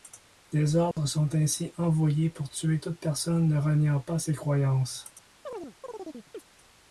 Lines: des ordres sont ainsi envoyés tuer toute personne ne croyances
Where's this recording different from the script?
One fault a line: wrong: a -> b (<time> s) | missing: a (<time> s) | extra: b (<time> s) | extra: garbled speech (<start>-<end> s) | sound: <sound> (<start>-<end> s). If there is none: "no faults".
sound: dropout (0.9-1.0 s)
extra: pour (2.3 s)
extra: reniant pas ses (3.6 s)
sound: chirp (5.5-6.4 s)